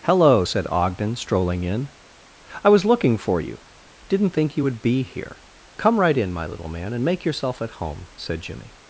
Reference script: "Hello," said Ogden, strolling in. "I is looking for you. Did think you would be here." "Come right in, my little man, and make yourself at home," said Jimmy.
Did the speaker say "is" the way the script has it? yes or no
no